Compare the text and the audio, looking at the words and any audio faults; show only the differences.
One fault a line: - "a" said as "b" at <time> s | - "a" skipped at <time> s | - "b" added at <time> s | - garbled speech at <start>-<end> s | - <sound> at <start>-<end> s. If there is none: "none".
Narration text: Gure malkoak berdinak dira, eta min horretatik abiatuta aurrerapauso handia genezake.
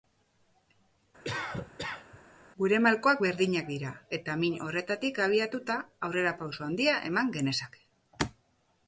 - cough at 1.2-2.2 s
- "eman" added at 7.1 s